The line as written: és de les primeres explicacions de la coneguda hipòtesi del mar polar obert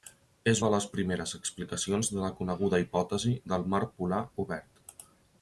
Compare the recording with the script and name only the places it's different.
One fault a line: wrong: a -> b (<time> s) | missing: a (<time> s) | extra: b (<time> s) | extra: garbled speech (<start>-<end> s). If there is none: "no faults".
no faults